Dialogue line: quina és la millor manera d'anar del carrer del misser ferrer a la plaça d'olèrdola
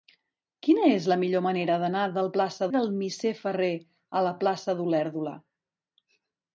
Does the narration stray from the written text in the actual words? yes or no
yes